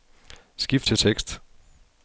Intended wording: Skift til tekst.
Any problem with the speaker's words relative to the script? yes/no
no